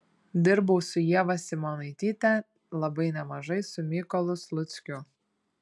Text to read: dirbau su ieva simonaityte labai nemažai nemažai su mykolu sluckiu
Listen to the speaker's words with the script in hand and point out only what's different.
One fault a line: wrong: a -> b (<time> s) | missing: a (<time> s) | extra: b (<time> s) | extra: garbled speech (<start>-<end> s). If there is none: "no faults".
missing: nemažai (3.6 s)